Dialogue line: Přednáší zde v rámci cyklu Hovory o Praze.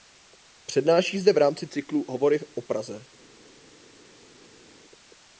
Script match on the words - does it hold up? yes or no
yes